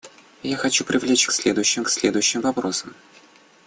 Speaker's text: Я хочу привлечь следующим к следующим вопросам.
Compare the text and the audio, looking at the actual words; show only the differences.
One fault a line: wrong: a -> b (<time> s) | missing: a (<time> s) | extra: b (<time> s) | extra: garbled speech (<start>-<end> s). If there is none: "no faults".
no faults